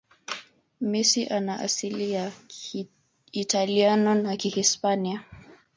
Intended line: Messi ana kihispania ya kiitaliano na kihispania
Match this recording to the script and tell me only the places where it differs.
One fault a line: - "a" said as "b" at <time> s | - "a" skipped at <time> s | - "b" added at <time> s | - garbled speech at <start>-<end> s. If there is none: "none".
- "kihispania" said as "asili" at 1.6 s